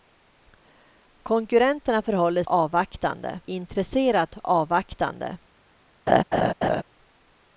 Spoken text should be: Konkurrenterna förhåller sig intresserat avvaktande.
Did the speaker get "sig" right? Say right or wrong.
wrong